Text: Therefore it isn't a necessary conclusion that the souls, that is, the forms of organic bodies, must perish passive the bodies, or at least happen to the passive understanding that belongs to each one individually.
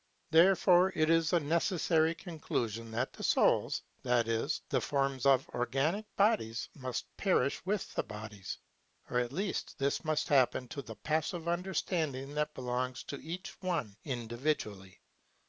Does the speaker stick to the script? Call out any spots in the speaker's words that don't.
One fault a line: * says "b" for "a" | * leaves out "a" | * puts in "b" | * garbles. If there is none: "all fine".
* says "is" for "isn't"
* says "with" for "passive"
* puts in "this must"